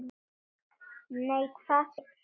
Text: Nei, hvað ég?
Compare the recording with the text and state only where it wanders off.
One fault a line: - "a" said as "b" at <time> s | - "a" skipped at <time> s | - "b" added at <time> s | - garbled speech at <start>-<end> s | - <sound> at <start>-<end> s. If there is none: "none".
none